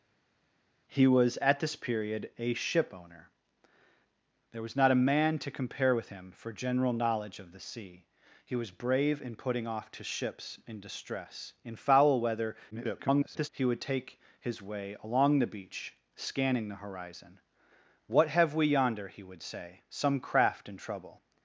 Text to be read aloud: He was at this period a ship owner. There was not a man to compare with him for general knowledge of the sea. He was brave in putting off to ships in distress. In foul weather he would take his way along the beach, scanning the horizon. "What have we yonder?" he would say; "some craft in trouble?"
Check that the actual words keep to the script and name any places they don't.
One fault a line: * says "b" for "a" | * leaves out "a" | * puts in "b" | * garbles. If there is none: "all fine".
* garbles